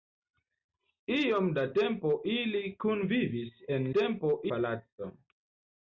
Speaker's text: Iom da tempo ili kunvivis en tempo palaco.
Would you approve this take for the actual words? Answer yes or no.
yes